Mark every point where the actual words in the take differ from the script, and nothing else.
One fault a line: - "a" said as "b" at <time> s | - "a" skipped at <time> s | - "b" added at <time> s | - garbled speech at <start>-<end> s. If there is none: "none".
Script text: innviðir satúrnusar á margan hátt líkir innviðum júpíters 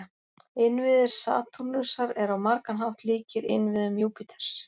- "eru" added at 2.2 s